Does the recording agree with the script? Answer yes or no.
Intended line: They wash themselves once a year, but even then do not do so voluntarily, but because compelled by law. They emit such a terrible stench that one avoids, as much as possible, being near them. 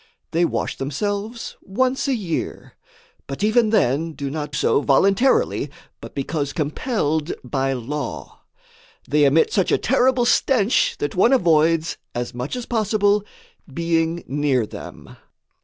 no